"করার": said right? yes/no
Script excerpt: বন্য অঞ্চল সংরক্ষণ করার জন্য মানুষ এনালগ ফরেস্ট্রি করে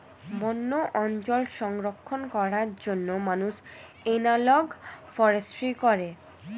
yes